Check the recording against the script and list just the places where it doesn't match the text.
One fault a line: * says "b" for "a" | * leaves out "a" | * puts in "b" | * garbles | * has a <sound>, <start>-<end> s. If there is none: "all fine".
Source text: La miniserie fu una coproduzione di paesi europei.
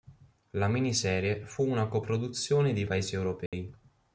* has a dropout, 3.5-3.5 s